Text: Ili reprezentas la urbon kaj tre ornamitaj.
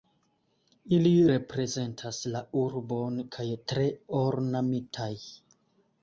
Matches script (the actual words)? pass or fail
pass